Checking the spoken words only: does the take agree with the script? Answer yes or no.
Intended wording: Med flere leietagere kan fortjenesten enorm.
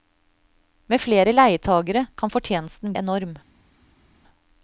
yes